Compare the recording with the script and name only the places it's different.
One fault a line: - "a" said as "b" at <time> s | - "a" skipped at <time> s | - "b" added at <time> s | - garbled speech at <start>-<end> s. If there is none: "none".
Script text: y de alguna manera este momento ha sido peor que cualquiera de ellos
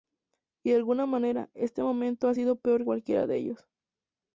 - "que" skipped at 2.9 s